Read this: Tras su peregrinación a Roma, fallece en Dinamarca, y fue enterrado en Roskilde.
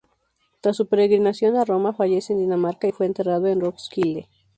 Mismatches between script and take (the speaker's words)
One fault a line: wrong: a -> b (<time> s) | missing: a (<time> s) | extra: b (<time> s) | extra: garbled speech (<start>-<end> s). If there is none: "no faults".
no faults